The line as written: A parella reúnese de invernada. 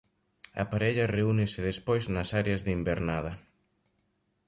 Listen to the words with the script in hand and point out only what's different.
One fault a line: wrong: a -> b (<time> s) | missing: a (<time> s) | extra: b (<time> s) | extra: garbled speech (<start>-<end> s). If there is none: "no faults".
extra: despois nas áreas (1.7 s)